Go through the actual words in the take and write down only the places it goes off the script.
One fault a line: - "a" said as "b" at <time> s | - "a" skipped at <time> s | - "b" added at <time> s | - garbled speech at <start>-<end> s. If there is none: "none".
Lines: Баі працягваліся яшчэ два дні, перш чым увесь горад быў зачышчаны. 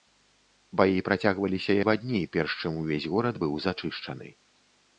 - "яшчэ" skipped at 1.8 s